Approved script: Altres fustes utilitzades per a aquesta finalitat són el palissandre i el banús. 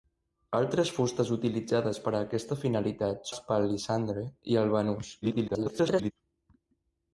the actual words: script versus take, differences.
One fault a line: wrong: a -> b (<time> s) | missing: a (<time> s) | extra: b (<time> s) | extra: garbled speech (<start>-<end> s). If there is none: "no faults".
missing: són (3.3 s)
extra: garbled speech (5.2-6.1 s)